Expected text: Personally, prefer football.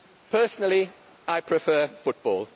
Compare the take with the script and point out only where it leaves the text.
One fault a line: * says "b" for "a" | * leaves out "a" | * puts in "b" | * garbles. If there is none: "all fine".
* puts in "I"